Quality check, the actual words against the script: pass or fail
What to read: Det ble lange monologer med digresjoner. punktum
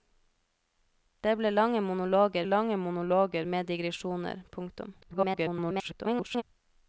fail